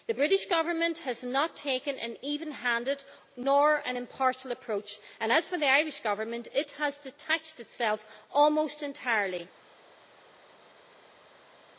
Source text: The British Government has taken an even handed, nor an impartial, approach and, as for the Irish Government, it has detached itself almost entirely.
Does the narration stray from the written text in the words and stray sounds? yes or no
yes